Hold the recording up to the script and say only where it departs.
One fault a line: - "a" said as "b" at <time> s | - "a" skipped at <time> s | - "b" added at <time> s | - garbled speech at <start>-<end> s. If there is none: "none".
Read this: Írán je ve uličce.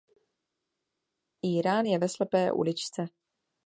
- "slepé" added at 2.1 s